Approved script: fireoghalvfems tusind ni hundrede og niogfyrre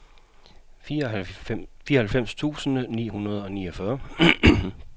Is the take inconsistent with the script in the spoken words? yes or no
no